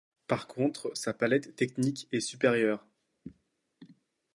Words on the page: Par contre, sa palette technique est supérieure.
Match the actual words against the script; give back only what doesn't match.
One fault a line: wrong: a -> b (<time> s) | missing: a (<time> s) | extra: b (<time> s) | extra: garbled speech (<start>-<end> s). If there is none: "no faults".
no faults